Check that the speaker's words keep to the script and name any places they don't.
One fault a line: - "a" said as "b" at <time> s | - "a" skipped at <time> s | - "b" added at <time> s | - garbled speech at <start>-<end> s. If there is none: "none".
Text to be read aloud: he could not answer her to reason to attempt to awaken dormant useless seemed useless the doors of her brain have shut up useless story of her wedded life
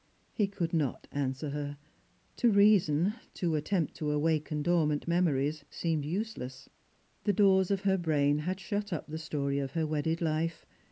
- "useless" said as "memories" at 5.1 s
- "have" said as "had" at 8.4 s
- "useless" said as "the" at 9.1 s